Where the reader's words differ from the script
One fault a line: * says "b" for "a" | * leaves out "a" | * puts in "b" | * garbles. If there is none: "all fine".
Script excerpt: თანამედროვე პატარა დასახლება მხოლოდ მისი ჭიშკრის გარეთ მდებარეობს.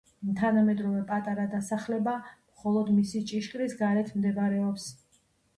all fine